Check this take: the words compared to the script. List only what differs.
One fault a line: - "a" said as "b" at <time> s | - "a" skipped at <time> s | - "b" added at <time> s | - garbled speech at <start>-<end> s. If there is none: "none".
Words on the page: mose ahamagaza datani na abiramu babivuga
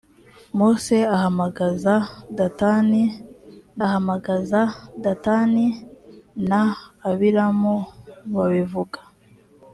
- "ahamagaza datani" added at 3.9 s